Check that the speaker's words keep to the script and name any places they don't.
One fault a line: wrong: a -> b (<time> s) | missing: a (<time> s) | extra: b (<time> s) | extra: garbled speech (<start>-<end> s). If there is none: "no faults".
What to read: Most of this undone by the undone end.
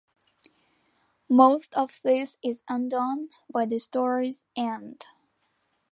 extra: is (2.4 s)
wrong: undone -> story's (3.8 s)